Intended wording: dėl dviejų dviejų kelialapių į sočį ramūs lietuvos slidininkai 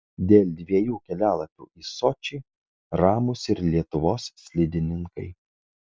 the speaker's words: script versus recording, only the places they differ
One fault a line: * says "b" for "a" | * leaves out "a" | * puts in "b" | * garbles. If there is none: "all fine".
* leaves out "dviejų"
* puts in "ir"